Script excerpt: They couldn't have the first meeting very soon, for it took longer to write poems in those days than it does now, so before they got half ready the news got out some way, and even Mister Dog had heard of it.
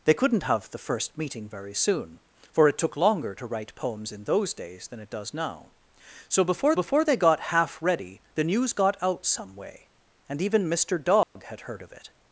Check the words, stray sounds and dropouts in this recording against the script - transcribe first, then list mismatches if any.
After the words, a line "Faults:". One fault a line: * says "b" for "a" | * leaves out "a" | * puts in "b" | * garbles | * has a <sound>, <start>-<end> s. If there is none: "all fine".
They couldn't have the first meeting very soon, for it took longer to write poems in those days than it does now, so before before they got half ready the news got out some way, and even Mister Dog had heard of it.
Faults:
* puts in "before"
* has a dropout, 11.2-11.4 s